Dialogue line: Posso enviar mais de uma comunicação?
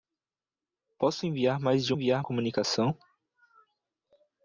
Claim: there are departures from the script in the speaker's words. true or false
true